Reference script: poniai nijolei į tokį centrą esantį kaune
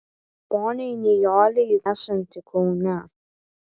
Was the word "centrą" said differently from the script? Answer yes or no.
yes